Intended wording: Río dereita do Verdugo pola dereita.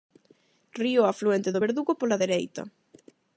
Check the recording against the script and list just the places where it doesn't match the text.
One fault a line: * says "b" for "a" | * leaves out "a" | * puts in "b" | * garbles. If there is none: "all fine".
* says "afluente" for "dereita"